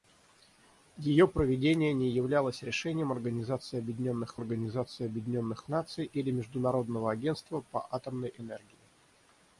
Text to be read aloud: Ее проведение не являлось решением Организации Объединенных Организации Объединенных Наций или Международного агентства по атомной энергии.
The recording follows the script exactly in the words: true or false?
true